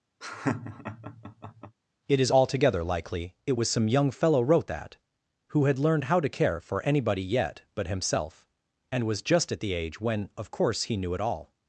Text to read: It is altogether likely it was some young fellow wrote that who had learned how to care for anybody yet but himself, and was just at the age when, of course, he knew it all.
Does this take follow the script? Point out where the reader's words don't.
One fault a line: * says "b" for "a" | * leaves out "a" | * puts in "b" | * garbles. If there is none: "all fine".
all fine